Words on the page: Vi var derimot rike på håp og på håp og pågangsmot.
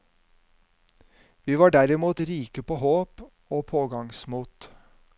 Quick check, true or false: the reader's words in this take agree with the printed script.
false